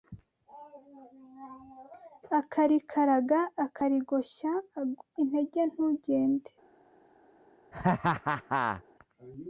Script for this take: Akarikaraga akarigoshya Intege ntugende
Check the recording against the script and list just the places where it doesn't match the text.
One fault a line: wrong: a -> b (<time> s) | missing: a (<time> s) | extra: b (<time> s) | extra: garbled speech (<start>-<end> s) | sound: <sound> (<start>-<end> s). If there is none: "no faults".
sound: laugh (7.7-8.8 s)